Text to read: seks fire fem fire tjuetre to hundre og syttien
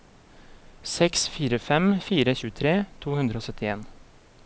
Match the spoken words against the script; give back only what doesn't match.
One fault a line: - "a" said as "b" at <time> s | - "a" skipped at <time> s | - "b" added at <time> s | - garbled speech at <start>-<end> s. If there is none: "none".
none